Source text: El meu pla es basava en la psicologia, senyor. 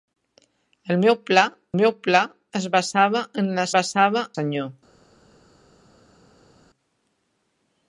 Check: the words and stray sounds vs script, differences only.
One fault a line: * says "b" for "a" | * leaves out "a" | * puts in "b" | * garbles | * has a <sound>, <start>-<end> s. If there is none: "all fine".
* puts in "meu pla"
* says "basava" for "psicologia"